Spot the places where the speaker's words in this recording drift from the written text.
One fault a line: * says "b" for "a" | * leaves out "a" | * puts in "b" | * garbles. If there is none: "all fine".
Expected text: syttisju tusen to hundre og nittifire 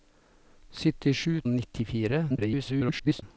* leaves out "tusen to hundre"
* garbles